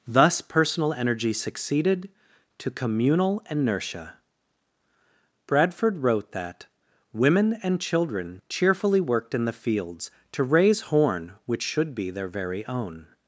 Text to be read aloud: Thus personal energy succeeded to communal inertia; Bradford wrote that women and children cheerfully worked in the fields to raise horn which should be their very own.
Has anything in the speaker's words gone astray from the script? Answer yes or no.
no